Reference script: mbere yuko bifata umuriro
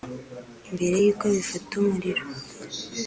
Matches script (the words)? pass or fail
pass